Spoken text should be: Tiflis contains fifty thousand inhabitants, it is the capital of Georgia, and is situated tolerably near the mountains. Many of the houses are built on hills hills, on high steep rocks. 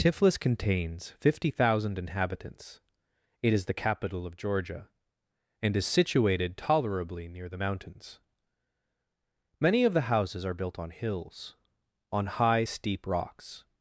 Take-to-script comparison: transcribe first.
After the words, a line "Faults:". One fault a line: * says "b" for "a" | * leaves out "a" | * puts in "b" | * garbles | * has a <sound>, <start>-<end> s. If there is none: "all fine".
Tiflis contains fifty thousand inhabitants, it is the capital of Georgia, and is situated tolerably near the mountains. Many of the houses are built on hills, on high steep rocks.
Faults:
* leaves out "hills"